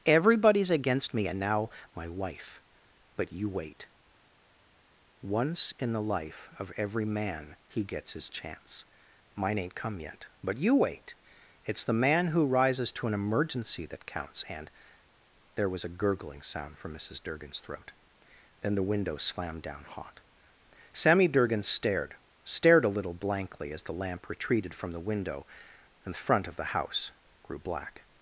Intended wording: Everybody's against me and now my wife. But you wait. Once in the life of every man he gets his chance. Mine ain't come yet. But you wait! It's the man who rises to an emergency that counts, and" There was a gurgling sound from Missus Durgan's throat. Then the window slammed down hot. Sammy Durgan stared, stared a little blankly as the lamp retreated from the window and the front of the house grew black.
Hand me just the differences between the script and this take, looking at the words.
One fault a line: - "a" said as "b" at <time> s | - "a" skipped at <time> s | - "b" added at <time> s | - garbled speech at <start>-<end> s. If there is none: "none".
none